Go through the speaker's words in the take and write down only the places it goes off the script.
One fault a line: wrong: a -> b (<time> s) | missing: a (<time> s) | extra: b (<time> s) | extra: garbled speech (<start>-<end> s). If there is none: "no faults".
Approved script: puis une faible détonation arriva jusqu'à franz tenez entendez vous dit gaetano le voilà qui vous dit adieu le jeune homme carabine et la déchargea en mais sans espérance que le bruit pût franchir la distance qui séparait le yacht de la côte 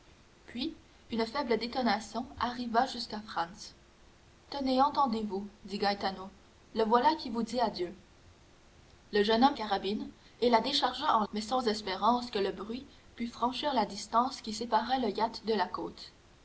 no faults